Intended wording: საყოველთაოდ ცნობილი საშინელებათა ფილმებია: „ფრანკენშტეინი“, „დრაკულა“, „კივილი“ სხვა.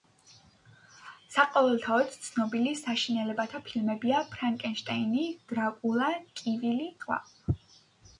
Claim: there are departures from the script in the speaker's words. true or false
false